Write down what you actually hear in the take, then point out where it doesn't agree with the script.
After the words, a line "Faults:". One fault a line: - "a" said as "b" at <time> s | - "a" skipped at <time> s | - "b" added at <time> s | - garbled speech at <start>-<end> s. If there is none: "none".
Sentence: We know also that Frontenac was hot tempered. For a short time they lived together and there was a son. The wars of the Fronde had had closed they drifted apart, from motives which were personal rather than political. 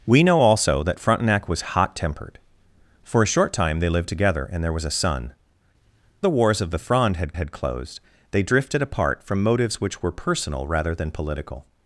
We know also that Frontenac was hot tempered. For a short time they lived together and there was a son. The wars of the Fronde had had closed they drifted apart, from motives which were personal rather than political.
Faults:
none